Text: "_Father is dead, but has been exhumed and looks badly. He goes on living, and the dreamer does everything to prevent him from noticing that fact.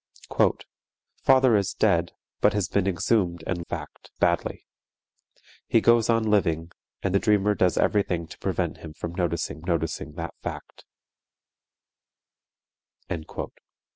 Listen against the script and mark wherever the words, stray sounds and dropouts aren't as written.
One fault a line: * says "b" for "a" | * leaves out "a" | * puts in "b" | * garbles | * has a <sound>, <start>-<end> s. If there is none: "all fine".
* says "fact" for "looks"
* puts in "noticing"